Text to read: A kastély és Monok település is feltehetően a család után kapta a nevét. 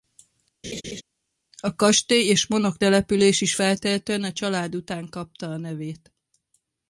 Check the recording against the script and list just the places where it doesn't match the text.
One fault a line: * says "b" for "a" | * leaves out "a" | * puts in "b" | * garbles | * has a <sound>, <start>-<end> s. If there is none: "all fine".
* has a laugh, 0.6-1.0 s